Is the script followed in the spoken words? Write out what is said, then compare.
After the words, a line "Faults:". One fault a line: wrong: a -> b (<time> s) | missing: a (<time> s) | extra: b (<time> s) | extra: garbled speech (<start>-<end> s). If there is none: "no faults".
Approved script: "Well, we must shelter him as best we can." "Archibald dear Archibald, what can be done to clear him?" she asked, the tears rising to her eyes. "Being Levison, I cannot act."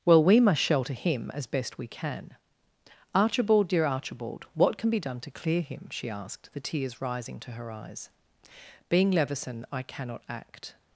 "Well, we must shelter him as best we can." "Archibald dear Archibald, what can be done to clear him?" she asked, the tears rising to her eyes. "Being Levison, I cannot act."
Faults:
no faults